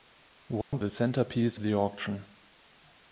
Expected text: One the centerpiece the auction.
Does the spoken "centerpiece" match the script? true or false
true